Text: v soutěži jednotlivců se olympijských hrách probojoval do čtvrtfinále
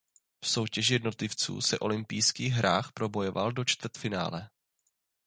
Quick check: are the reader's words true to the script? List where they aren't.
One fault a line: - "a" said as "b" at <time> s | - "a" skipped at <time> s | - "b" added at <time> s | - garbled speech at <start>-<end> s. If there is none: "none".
none